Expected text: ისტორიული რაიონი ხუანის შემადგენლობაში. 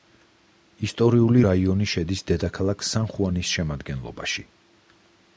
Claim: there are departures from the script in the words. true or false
true